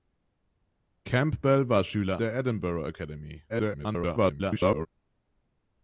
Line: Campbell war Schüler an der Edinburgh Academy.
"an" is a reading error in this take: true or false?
true